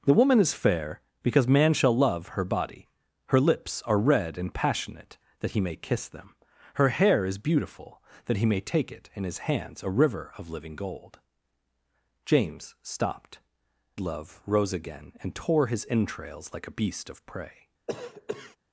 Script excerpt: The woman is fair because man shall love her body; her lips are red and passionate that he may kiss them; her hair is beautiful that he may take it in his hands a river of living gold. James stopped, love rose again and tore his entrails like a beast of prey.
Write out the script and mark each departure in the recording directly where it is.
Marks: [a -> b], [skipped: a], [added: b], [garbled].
The woman is fair because man shall love her body; her lips are red and passionate that he may kiss them; her hair is beautiful that he may take it in his hands a river of living gold. James stopped, love rose again and tore his entrails like a beast of prey.